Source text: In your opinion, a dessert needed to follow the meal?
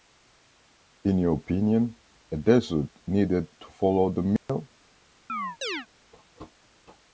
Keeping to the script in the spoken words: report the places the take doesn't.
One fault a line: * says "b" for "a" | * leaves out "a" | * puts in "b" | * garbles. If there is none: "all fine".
all fine